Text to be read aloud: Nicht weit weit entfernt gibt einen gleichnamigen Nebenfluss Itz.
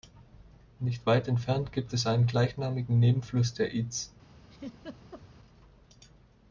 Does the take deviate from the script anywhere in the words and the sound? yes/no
yes